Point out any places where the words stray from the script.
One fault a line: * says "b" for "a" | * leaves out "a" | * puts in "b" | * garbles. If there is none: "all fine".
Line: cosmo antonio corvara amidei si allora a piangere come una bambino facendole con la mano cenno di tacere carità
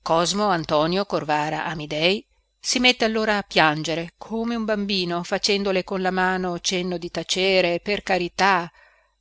* puts in "mette"
* says "un" for "una"
* puts in "per"